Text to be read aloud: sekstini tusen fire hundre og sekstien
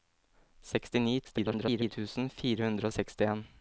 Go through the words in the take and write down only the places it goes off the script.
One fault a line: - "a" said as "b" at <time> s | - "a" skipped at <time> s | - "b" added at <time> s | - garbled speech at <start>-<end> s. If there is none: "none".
- garbled speech at 1.2-1.9 s